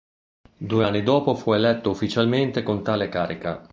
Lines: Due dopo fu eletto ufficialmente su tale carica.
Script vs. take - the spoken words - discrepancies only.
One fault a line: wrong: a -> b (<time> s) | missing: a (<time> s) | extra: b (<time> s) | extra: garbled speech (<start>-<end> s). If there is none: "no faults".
extra: anni (0.8 s)
wrong: su -> con (2.6 s)